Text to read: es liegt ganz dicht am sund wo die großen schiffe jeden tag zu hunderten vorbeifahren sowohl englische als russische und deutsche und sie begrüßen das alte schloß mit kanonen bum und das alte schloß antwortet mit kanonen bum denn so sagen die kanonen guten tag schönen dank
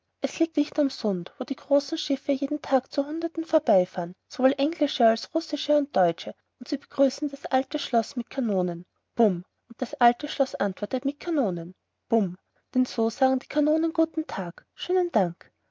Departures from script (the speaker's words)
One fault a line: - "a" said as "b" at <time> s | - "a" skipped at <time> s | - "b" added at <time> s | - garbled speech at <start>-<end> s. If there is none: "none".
- "ganz" skipped at 0.6 s